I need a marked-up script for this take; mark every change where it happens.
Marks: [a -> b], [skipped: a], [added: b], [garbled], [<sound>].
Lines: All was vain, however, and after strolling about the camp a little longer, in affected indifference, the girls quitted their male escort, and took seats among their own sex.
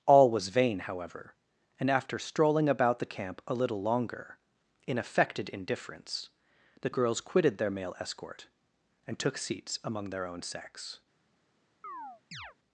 All was vain, however, and after strolling about the camp a little longer, in affected indifference, the girls quitted their male escort, and took seats among their own sex. [chirp]